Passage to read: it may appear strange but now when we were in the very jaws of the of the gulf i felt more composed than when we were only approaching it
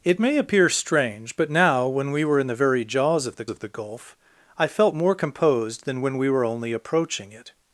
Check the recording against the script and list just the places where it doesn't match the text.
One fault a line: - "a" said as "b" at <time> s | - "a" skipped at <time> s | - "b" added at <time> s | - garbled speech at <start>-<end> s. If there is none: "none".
none